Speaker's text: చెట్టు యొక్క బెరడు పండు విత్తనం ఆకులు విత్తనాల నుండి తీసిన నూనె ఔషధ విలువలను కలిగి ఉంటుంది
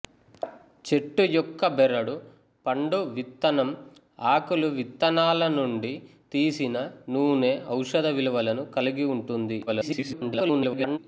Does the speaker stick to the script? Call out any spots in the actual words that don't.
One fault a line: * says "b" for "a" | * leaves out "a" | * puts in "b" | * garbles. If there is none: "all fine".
* garbles